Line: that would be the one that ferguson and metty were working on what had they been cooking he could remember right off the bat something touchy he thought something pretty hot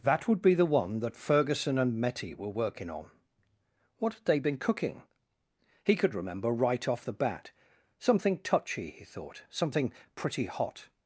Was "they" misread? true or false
false